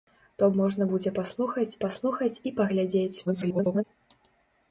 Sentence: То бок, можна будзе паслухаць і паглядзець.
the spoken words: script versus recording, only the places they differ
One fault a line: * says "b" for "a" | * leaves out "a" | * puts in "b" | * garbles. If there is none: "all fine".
* leaves out "бок"
* puts in "паслухаць"
* garbles